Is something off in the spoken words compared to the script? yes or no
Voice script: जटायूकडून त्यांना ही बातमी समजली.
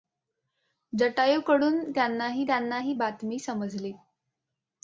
yes